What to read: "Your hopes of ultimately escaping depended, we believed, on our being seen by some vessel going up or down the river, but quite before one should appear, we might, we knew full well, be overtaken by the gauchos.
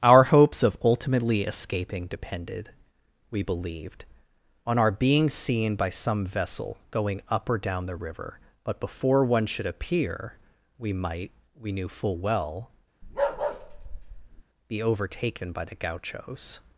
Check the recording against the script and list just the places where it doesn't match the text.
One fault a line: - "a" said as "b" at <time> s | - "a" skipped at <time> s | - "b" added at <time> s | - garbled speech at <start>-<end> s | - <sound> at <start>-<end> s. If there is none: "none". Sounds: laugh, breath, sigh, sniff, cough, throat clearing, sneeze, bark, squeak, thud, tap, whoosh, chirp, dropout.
- "Your" said as "Our" at 0.0 s
- "quite" skipped at 8.8 s
- bark at 13.0-14.4 s